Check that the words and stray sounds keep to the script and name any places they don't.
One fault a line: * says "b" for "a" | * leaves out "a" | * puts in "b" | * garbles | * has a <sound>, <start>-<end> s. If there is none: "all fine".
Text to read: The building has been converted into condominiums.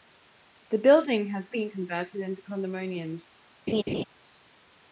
* has a laugh, 3.7-4.0 s